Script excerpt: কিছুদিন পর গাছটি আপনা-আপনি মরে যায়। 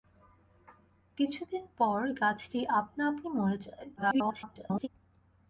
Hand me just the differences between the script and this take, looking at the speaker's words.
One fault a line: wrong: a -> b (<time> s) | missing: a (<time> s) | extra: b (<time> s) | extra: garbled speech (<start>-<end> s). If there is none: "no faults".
extra: garbled speech (4.0-4.9 s)